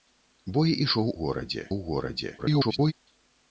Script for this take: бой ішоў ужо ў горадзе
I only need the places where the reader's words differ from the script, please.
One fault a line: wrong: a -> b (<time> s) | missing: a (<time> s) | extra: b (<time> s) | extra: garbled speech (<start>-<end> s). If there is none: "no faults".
wrong: ужо -> горадзе (1.2 s)
extra: garbled speech (2.4-2.9 s)